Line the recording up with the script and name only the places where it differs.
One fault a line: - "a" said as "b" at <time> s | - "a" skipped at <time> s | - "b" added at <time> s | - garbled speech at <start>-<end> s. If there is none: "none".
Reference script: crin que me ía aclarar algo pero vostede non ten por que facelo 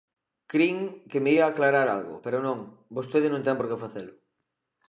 - "non" added at 2.5 s